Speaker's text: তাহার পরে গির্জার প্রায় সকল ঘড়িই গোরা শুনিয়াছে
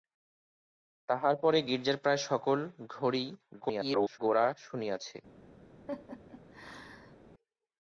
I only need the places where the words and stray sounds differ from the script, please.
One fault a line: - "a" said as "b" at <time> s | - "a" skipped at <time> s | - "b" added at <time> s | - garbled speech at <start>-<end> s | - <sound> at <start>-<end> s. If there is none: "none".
- garbled speech at 3.6-4.2 s
- laugh at 5.9-7.2 s